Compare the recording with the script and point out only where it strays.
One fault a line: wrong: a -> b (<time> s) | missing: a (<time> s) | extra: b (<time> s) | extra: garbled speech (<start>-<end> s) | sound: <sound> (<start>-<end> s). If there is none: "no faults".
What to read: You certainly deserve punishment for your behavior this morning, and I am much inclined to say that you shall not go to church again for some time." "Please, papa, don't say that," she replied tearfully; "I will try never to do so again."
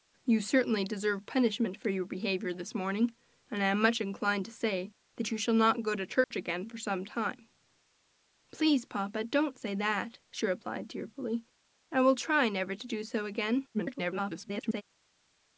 sound: dropout (6.2-6.3 s)
extra: garbled speech (13.7-14.8 s)